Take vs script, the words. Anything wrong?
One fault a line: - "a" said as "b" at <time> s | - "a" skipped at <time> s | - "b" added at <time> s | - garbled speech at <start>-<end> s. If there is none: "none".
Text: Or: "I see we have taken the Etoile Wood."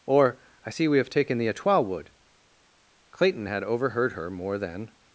- "Clayton had overheard her more than" added at 3.1 s